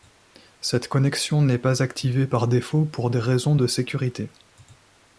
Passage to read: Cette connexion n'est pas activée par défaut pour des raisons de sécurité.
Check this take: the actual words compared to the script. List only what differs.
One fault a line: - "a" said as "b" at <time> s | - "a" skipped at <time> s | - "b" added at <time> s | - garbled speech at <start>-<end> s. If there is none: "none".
none